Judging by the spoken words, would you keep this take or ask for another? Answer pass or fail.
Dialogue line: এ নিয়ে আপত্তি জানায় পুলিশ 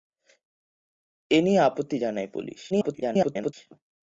fail